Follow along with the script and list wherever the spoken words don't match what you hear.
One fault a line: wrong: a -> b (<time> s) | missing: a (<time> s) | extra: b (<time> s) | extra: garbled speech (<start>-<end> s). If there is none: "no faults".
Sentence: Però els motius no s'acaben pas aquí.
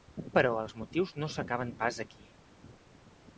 no faults